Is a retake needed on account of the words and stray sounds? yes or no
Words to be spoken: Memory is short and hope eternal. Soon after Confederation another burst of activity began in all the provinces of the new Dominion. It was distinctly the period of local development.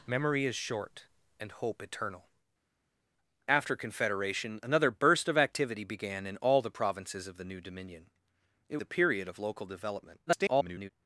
yes